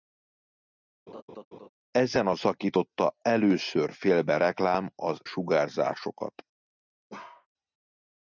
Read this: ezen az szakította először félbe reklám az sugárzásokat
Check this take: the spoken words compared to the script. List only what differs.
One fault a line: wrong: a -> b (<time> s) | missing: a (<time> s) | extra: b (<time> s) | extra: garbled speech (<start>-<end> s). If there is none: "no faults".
no faults